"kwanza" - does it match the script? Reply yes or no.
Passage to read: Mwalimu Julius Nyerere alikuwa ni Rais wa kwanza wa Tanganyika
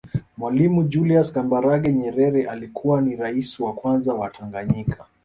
yes